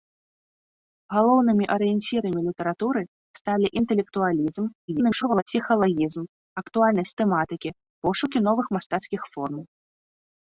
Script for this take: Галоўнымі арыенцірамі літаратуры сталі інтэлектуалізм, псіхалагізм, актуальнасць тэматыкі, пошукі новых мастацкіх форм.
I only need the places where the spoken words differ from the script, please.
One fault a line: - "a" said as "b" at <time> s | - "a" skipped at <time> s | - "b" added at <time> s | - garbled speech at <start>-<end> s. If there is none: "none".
- garbled speech at 4.9-5.4 s